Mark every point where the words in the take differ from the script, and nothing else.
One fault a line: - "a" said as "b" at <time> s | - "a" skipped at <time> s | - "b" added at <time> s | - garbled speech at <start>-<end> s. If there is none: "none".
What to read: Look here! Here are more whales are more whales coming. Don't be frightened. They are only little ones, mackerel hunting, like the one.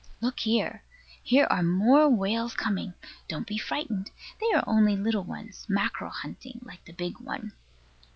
- "are more whales" skipped at 2.5 s
- "big" added at 6.9 s